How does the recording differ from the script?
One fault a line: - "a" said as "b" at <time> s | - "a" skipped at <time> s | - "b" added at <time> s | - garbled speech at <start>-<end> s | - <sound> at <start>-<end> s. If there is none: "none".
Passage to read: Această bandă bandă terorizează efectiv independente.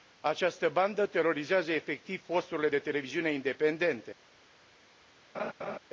- "bandă" skipped at 1.1 s
- "posturile de televiziune" added at 2.3 s
- laugh at 5.3-5.8 s